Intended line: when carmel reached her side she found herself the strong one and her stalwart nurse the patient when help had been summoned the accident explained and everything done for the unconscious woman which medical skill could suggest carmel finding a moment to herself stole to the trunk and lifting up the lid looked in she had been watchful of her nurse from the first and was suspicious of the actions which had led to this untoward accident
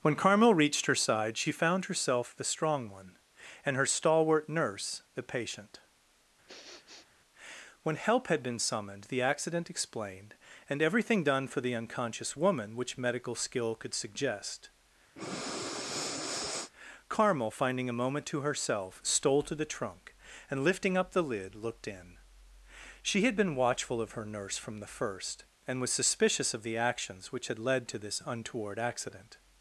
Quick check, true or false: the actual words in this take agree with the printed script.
true